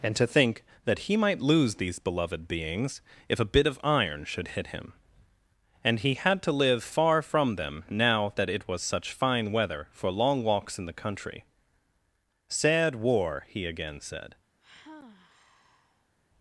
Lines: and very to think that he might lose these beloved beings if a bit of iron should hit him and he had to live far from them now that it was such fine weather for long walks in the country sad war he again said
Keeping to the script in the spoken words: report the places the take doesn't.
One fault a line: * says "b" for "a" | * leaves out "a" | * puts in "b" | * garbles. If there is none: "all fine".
* leaves out "very"